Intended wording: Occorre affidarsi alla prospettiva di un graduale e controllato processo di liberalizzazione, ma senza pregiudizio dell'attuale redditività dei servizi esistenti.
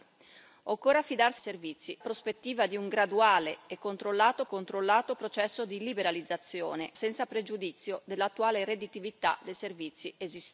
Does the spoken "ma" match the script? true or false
false